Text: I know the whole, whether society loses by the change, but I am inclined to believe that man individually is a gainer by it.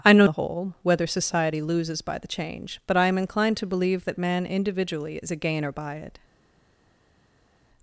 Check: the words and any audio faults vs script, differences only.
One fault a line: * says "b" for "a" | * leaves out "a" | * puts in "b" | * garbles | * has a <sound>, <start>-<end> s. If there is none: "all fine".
all fine